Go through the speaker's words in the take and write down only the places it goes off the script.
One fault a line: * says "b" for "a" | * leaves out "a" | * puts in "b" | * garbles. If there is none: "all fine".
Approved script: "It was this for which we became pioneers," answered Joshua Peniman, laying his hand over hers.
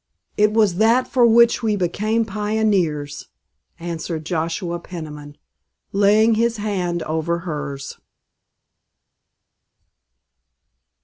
* says "that" for "this"